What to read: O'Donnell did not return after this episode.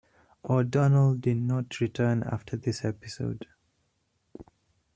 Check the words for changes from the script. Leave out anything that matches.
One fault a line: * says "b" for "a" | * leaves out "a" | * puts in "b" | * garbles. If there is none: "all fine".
all fine